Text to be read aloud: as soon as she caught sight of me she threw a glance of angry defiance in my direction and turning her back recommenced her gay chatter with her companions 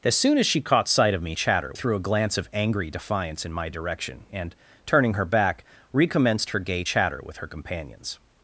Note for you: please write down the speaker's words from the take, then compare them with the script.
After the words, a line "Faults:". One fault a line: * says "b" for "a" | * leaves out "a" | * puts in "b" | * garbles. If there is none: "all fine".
as soon as she caught sight of me chatter threw a glance of angry defiance in my direction and turning her back recommenced her gay chatter with her companions
Faults:
* says "chatter" for "she"